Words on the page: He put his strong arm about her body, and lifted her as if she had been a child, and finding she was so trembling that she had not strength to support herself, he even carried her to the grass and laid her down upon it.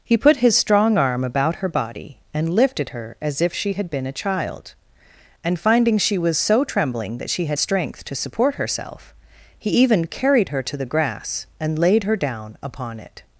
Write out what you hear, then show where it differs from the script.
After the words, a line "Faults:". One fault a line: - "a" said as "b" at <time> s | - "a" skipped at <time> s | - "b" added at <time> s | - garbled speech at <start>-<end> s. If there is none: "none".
He put his strong arm about her body, and lifted her as if she had been a child, and finding she was so trembling that she had strength to support herself, he even carried her to the grass and laid her down upon it.
Faults:
- "not" skipped at 7.6 s